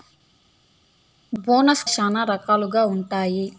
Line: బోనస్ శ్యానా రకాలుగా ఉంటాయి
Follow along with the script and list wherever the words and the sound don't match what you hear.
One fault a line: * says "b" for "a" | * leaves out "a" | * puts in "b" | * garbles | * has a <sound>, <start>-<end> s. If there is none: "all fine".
all fine